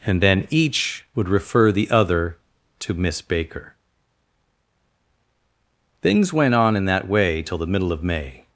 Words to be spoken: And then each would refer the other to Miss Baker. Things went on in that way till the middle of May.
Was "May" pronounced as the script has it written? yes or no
yes